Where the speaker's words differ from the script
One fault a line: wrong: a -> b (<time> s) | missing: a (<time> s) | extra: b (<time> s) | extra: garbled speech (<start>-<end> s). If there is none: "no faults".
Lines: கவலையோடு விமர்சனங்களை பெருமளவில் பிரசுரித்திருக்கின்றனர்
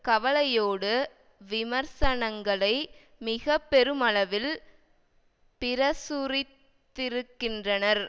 extra: மிக (3.2 s)